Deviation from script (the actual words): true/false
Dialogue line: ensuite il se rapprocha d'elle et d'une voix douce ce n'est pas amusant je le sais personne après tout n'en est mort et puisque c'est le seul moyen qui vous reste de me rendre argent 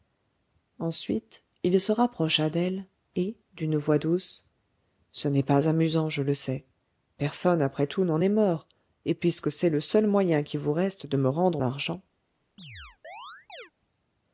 false